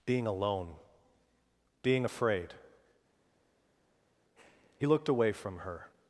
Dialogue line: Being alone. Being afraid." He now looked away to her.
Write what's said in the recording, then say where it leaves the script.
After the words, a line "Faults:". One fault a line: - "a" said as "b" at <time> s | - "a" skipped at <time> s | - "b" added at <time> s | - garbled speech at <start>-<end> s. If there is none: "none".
Being alone. Being afraid." He looked away from her.
Faults:
- "now" skipped at 4.9 s
- "to" said as "from" at 5.3 s